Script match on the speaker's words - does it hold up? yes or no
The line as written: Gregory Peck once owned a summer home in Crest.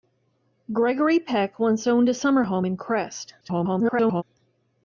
no